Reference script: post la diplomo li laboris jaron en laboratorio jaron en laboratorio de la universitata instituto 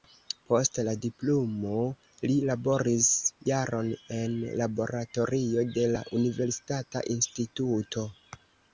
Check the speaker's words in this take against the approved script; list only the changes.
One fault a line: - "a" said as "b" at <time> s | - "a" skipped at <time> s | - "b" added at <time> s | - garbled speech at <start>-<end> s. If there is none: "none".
- "jaron en laboratorio" skipped at 5.7 s